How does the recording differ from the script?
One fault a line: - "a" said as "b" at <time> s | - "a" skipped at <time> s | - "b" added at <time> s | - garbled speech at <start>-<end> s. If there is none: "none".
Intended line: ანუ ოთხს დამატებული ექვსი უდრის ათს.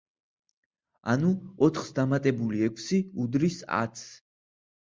none